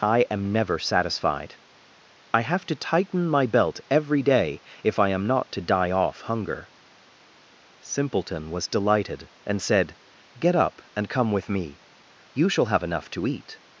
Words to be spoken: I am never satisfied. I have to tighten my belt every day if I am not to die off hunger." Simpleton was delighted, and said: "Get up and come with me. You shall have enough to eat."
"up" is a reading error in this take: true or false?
false